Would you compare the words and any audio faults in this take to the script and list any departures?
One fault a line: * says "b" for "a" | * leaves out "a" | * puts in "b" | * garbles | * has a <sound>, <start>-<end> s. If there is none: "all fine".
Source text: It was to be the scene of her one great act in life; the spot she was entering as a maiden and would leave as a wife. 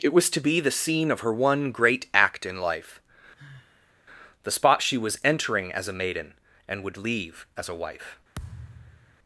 * has a sigh, 3.4-3.9 s
* has a thud, 8.3-9.2 s